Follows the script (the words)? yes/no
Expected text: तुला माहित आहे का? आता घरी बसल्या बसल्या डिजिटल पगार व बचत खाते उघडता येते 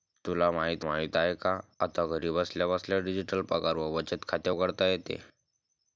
no